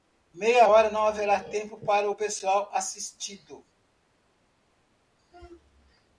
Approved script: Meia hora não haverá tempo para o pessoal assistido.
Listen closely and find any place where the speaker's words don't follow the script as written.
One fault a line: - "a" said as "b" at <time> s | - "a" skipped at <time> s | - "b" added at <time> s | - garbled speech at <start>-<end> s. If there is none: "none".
none